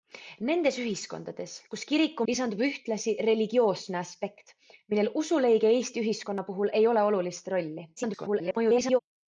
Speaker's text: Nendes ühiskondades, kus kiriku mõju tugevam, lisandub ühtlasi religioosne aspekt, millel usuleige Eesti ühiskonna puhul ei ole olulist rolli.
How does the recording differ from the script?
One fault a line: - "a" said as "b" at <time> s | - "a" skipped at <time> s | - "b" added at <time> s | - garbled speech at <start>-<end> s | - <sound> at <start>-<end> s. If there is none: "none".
- "mõju tugevam" skipped at 2.2 s
- garbled speech at 8.0-9.0 s